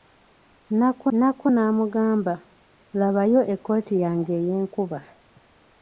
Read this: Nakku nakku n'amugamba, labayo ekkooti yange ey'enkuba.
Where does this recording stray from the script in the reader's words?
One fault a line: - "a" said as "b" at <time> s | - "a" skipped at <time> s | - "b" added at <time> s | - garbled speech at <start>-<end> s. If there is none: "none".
none